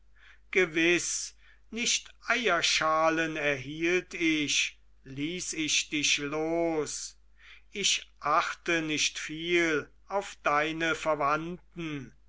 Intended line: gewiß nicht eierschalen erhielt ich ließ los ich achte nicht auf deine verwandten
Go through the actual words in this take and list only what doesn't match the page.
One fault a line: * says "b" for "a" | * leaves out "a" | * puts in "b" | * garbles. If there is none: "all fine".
* puts in "ich dich"
* puts in "viel"